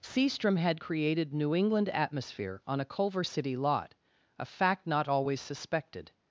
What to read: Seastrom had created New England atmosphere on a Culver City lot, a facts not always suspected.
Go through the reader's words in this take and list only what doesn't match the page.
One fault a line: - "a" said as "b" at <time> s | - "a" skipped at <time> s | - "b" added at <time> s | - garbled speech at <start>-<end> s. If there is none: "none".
- "facts" said as "fact" at 4.5 s